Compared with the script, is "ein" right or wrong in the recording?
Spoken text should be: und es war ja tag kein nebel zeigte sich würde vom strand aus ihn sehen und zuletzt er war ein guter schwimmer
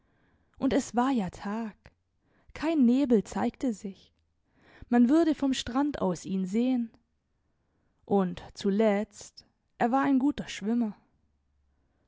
right